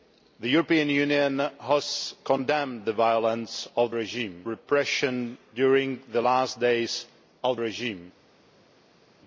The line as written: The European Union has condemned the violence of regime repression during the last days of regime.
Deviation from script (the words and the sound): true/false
false